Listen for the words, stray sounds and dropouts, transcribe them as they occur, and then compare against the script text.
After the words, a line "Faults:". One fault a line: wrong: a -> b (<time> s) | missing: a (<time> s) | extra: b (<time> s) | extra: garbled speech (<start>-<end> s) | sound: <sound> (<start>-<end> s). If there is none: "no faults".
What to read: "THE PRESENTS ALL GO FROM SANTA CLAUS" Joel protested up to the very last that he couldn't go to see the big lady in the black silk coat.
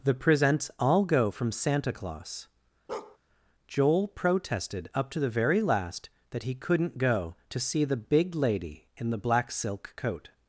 "THE PRESENTS ALL GO FROM SANTA CLAUS" Joel protested up to the very last that he couldn't go to see the big lady in the black silk coat.
Faults:
sound: bark (2.9-3.2 s)